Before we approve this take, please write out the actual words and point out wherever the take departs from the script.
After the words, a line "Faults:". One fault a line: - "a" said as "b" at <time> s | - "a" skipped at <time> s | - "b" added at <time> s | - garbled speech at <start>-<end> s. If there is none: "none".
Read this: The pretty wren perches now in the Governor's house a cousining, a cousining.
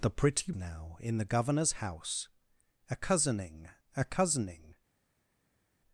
The pretty now in the Governor's house a cousining, a cousining.
Faults:
- "wren perches" skipped at 0.5 s